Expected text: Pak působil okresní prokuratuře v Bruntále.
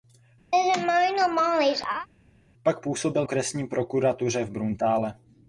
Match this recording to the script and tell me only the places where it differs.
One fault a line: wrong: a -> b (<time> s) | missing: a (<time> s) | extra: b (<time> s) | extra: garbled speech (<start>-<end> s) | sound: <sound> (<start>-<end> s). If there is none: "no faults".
sound: laugh (0.5-2.1 s)